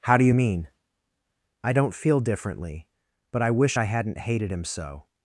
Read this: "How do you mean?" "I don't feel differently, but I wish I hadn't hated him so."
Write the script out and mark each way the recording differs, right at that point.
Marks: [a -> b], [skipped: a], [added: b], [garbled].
"How do you mean?" "I don't feel differently, but I wish I hadn't hated him so."